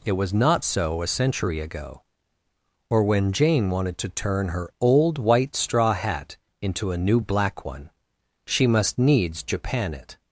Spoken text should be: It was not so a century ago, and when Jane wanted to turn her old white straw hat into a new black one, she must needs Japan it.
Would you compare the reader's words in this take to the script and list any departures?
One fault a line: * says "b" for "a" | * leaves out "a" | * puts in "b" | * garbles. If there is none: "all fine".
* says "or" for "and"